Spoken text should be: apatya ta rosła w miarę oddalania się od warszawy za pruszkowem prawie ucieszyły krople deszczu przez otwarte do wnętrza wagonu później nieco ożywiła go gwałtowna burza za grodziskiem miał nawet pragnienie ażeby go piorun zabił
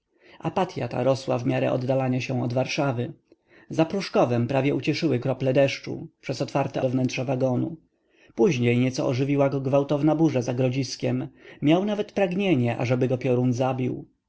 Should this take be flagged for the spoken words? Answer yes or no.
no